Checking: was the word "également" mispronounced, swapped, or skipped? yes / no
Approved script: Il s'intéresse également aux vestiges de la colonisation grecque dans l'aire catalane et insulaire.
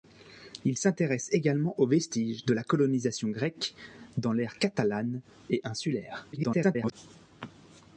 no